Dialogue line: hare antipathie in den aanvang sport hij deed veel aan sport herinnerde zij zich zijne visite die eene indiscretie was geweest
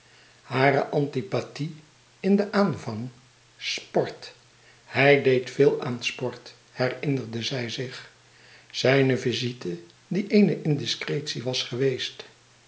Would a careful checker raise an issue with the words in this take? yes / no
no